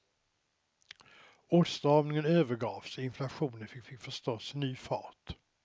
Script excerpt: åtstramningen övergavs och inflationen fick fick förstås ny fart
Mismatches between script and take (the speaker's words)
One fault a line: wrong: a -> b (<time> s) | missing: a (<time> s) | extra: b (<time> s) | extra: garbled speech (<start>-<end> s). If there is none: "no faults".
no faults